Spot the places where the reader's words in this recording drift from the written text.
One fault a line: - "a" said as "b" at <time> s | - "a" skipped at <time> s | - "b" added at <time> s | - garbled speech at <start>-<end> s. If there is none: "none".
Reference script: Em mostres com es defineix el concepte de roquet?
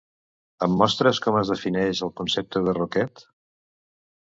none